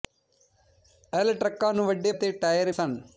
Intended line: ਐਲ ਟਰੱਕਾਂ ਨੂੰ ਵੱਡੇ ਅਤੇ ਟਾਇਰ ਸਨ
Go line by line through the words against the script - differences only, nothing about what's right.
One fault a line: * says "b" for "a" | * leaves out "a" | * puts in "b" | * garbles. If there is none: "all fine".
all fine